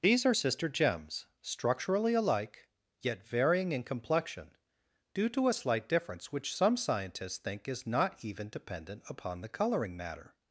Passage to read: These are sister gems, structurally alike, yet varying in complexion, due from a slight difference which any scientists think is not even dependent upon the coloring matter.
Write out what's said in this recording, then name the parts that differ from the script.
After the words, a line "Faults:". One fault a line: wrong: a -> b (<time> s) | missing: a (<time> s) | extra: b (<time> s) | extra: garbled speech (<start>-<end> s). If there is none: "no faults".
These are sister gems, structurally alike, yet varying in complexion, due to a slight difference which some scientists think is not even dependent upon the coloring matter.
Faults:
wrong: from -> to (5.3 s)
wrong: any -> some (6.5 s)